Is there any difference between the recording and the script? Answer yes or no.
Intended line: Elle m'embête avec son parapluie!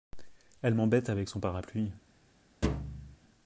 no